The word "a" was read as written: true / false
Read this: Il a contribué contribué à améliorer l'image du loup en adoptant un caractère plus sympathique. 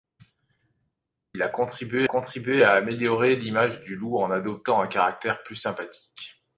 true